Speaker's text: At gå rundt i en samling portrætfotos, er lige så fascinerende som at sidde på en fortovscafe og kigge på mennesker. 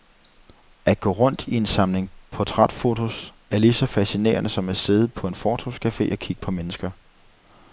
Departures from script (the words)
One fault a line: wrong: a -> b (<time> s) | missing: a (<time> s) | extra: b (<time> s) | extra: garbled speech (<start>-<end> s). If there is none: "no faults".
no faults